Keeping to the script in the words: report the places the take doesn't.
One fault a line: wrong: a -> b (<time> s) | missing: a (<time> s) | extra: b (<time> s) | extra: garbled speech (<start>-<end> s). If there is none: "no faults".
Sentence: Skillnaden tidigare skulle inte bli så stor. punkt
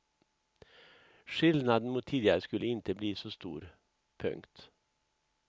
extra: mot (1.9 s)